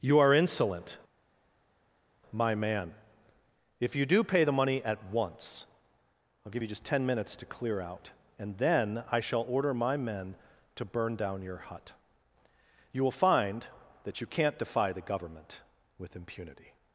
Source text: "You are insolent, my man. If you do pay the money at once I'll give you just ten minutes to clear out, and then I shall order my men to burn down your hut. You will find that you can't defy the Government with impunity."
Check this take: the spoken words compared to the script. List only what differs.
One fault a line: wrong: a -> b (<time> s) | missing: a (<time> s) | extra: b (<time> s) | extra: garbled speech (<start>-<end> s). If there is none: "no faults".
no faults